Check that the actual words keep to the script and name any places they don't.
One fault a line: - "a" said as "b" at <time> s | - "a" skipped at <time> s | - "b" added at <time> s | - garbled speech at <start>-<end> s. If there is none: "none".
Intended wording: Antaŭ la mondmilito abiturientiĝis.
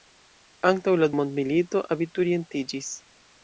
none